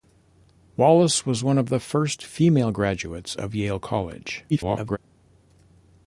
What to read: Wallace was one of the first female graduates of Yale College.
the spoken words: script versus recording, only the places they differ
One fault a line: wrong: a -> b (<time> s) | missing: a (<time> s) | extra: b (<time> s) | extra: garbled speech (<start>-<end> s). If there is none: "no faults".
extra: garbled speech (4.5-5.0 s)